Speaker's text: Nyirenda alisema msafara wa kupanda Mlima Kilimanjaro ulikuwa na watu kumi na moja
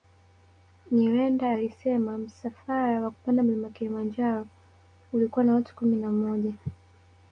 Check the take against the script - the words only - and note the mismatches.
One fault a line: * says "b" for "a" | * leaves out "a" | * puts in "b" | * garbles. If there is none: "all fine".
all fine